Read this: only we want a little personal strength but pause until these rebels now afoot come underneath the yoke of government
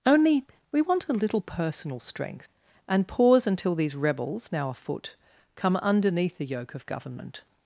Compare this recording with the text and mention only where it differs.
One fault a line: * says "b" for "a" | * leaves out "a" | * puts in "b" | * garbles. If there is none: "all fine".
* says "and" for "but"